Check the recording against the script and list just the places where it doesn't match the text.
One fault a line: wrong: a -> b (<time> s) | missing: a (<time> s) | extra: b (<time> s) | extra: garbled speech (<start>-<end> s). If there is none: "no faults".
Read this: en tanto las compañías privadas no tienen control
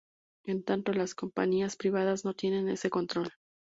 extra: ese (2.7 s)